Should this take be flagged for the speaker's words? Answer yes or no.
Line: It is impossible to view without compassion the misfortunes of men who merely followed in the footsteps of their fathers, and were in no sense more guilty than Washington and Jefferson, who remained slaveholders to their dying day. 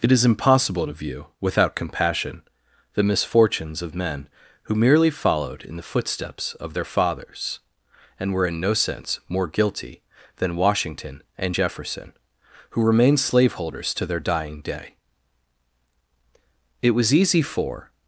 yes